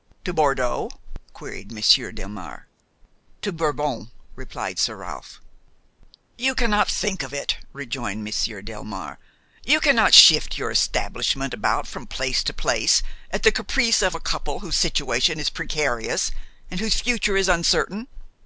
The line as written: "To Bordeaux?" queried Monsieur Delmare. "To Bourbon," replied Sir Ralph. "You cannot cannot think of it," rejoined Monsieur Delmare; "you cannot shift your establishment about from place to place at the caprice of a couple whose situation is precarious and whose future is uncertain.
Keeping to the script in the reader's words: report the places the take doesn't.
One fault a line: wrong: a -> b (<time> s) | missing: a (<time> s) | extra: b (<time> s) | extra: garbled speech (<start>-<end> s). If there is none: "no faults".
missing: cannot (6.9 s)